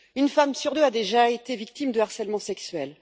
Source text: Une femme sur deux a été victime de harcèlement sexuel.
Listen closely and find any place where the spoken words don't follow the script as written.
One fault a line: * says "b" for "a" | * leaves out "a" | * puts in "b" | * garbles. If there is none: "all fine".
* puts in "déjà"